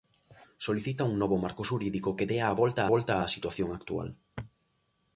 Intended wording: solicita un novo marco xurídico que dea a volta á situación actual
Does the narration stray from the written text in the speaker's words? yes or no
yes